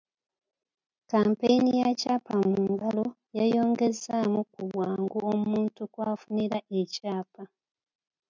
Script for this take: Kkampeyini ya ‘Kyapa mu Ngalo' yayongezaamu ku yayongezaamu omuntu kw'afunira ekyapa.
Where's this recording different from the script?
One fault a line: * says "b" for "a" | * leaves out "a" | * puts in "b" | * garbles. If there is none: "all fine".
* says "bwangu" for "yayongezaamu"